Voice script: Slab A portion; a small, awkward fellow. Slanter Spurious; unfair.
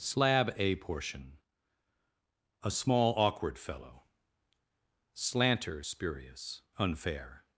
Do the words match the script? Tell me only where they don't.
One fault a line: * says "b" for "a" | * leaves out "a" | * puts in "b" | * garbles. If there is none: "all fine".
all fine